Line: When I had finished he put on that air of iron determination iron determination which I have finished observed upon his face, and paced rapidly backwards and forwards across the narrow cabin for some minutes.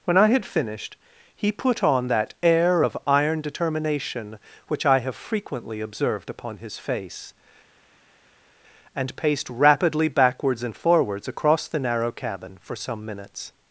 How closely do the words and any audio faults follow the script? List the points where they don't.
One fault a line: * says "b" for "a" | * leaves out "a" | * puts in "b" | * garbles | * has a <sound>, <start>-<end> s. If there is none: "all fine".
* leaves out "iron determination"
* says "frequently" for "finished"